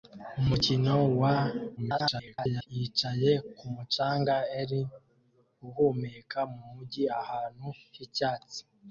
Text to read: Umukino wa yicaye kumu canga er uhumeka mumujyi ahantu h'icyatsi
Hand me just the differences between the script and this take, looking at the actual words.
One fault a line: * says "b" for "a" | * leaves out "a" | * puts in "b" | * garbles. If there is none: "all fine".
* garbles